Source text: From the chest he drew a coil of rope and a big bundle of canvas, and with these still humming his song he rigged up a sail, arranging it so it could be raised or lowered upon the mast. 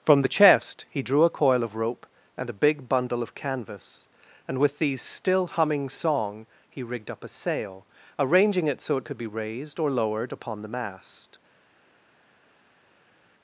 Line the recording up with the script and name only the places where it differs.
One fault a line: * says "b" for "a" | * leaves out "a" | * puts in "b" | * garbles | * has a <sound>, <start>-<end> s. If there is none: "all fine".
* leaves out "his"